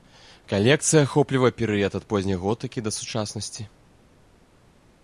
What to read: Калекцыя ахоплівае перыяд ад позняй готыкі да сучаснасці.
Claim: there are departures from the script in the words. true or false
false